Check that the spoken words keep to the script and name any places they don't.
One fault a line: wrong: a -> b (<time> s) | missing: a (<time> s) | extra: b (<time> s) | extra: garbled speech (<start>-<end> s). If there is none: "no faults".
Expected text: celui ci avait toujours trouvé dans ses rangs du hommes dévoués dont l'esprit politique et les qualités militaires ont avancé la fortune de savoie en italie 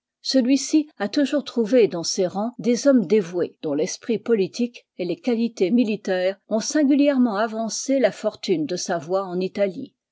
wrong: avait -> a (1.0 s)
wrong: du -> des (2.6 s)
extra: singulièrement (6.6 s)